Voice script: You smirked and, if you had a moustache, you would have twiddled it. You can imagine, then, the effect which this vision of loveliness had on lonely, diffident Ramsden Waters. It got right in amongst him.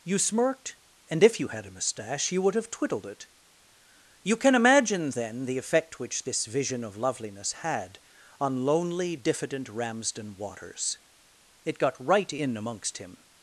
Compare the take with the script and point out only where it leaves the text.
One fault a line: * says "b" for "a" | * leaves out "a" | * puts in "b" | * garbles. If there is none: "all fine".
all fine